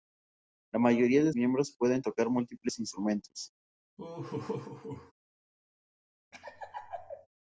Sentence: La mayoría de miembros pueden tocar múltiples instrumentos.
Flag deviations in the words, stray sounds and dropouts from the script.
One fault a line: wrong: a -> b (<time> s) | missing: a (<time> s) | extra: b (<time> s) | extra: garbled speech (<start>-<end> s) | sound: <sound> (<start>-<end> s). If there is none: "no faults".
sound: laugh (4.0-5.1 s)
sound: laugh (6.3-7.3 s)